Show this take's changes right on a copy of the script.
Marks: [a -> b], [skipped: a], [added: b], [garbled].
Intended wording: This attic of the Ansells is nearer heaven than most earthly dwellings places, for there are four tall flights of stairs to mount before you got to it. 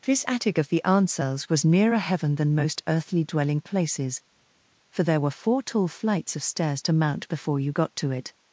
This attic of the Ansells [is -> was] nearer heaven than most earthly [dwellings -> dwelling] places, for there [are -> were] four tall flights of stairs to mount before you got to it.